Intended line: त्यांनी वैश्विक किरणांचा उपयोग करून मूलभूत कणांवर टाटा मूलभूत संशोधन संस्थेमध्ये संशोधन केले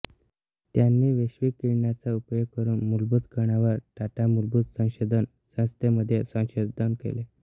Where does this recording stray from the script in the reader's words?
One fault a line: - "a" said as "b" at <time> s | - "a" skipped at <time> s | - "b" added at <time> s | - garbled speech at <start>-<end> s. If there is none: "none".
none